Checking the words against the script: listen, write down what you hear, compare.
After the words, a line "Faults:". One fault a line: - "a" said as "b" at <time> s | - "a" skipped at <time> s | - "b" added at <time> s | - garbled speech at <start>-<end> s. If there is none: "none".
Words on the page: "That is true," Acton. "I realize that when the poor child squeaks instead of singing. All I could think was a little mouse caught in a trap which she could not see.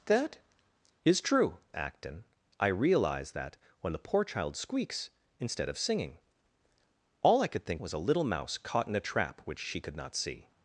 "That is true," Acton. "I realize that when the poor child squeaks instead of singing. All I could think was a little mouse caught in a trap which she could not see.
Faults:
none